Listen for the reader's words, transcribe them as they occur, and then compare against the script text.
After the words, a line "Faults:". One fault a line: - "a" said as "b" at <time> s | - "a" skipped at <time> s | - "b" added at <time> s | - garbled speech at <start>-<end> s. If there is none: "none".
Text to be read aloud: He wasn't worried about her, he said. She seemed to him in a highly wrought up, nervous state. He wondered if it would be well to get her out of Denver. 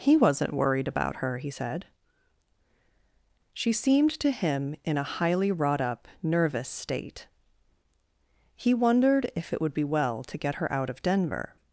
He wasn't worried about her, he said. She seemed to him in a highly wrought up, nervous state. He wondered if it would be well to get her out of Denver.
Faults:
none